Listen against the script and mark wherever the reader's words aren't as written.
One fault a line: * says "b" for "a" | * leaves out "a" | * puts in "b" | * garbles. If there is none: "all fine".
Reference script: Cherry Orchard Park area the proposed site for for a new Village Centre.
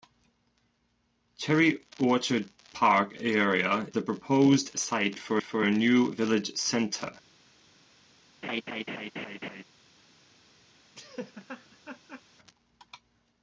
all fine